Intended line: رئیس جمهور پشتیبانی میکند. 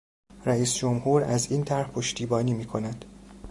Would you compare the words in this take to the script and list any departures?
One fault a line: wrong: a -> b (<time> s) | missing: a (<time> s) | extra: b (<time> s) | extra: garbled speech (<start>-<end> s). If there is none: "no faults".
extra: از این طرح (1.2 s)